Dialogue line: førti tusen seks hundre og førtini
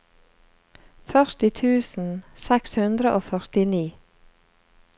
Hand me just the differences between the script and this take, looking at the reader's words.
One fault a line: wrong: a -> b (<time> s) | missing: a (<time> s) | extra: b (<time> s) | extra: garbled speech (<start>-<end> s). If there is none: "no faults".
no faults